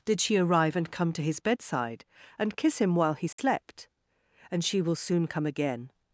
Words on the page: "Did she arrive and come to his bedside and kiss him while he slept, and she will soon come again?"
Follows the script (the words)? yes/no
yes